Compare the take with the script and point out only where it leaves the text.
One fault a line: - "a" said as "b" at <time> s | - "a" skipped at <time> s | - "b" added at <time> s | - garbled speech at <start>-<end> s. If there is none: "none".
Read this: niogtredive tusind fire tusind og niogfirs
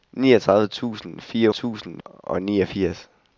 none